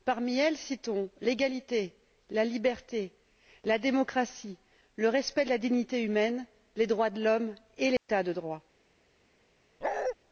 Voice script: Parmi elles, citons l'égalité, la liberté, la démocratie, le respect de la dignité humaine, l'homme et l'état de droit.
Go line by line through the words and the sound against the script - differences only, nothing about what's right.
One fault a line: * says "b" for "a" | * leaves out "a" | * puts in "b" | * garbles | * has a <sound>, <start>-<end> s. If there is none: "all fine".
* puts in "les droits de"
* has a dropout, 8.0-8.1 s
* has a bark, 9.8-10.2 s